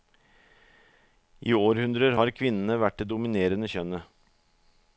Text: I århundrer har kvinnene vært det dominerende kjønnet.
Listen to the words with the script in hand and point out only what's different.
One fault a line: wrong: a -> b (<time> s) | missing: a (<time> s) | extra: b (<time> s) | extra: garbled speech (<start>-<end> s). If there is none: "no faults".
no faults